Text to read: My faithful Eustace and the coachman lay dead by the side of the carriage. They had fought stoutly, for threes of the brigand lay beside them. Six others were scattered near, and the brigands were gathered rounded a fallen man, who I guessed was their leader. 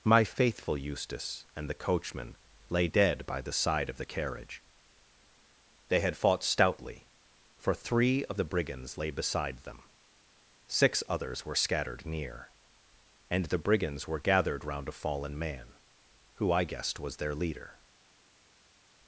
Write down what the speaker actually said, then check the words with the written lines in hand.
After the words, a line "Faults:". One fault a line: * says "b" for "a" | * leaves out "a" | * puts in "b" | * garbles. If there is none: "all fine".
My faithful Eustace and the coachman lay dead by the side of the carriage. They had fought stoutly, for three of the brigands lay beside them. Six others were scattered near, and the brigands were gathered round a fallen man, who I guessed was their leader.
Faults:
* says "three" for "threes"
* says "brigands" for "brigand"
* says "round" for "rounded"